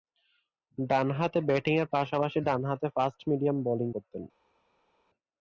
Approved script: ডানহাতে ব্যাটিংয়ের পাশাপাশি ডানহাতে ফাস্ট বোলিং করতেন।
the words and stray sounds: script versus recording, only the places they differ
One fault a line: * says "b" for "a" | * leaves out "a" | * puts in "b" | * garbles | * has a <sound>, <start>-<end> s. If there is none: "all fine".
* puts in "মিডিয়াম"